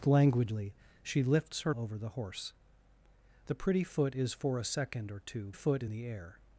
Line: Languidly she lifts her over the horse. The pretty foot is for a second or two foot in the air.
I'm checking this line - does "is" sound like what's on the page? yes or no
yes